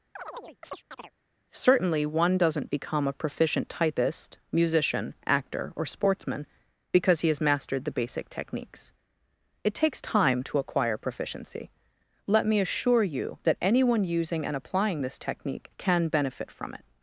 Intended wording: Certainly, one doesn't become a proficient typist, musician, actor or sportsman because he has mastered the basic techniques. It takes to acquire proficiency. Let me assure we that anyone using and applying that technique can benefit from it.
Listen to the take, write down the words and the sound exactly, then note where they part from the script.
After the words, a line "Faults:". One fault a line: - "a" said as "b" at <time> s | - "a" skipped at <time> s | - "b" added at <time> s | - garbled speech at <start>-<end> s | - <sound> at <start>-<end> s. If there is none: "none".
Certainly, one doesn't become a proficient typist, musician, actor or sportsman because he has mastered the basic techniques. It takes time to acquire proficiency. Let me assure you that anyone using and applying this technique can benefit from it.
Faults:
- chirp at 0.2-1.1 s
- "time" added at 10.0 s
- "we" said as "you" at 13.0 s
- "that" said as "this" at 15.0 s